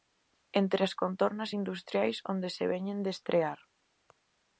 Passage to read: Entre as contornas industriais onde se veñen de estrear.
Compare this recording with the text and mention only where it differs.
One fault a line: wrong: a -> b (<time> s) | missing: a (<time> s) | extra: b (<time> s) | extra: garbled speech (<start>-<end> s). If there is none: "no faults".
no faults